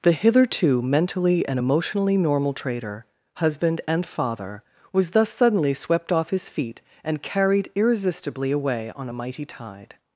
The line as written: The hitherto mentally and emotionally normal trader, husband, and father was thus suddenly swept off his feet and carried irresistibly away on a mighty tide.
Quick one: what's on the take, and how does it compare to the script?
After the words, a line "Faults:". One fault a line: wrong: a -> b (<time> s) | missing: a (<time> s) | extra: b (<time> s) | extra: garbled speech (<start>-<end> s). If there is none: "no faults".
The hitherto mentally and emotionally normal trader, husband, and father was thus suddenly swept off his feet and carried irresistibly away on a mighty tide.
Faults:
no faults